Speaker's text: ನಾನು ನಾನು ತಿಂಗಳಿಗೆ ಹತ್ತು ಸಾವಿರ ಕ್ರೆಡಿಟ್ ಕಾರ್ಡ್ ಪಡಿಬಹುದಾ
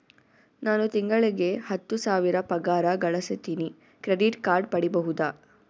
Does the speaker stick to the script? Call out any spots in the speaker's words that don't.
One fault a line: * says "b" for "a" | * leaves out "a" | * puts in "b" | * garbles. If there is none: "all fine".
* leaves out "ನಾನು"
* puts in "ಪಗಾರ ಗಳಸತಿನಿ"